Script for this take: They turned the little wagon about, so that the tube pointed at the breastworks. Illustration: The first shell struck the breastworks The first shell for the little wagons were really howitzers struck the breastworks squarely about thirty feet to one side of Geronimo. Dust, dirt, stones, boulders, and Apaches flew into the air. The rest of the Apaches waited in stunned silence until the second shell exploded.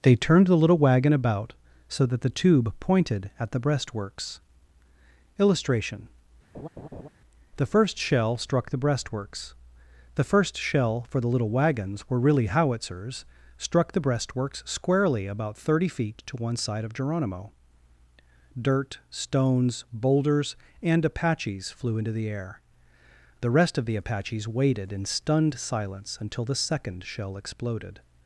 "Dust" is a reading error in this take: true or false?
true